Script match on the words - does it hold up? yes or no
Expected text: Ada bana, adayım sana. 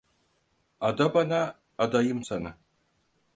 yes